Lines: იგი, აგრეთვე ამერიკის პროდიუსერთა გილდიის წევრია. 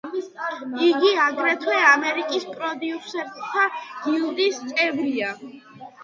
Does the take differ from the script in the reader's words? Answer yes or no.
no